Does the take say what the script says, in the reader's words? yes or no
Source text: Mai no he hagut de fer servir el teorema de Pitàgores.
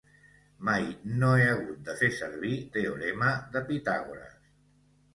no